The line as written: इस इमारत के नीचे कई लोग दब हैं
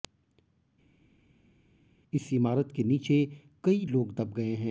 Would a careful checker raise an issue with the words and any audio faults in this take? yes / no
yes